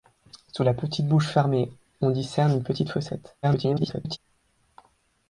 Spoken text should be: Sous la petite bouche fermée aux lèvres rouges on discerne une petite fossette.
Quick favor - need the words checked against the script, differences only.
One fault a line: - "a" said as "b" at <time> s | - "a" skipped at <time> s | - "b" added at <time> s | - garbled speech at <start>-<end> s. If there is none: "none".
- "aux lèvres rouges" skipped at 1.7 s
- garbled speech at 3.4-4.2 s